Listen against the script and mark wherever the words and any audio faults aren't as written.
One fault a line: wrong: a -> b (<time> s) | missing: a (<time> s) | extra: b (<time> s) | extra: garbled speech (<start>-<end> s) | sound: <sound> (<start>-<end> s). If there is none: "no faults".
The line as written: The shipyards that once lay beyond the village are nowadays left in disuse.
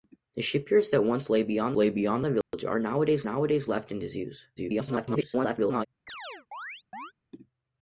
extra: lay beyond (1.8 s)
sound: dropout (2.4-2.5 s)
extra: nowadays (3.2 s)
extra: garbled speech (4.6-5.9 s)
sound: chirp (6.1-7.1 s)